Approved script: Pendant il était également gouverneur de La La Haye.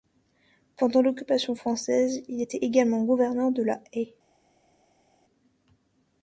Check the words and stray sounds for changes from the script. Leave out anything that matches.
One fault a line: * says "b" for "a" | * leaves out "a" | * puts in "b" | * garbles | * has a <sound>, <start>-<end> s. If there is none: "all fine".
* puts in "l'occupation française"
* leaves out "La"